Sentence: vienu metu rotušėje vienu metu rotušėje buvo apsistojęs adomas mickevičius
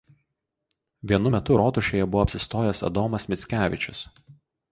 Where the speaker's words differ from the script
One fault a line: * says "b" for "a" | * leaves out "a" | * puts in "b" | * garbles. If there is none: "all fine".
* leaves out "vienu metu rotušėje"